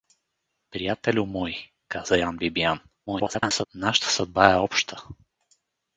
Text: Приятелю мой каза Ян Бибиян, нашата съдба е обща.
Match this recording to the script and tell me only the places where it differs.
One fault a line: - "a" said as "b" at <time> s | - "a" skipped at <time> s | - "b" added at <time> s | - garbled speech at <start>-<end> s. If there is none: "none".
- garbled speech at 3.1-3.7 s